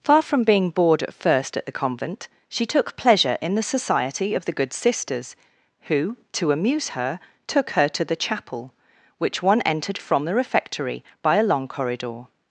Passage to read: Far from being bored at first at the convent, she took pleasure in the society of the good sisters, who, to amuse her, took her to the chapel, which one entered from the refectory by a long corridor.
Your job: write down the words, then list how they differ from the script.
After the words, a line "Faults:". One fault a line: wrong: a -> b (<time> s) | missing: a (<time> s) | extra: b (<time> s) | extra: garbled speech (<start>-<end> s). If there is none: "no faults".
Far from being bored at first at the convent, she took pleasure in the society of the good sisters, who, to amuse her, took her to the chapel, which one entered from the refectory by a long corridor.
Faults:
no faults